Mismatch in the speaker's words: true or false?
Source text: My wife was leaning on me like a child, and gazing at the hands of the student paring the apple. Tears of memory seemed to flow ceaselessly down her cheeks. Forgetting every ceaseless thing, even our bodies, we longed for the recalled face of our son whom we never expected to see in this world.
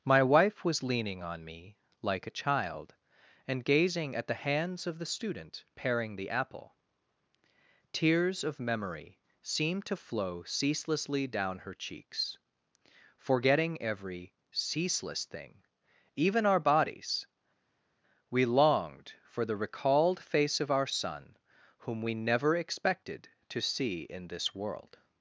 false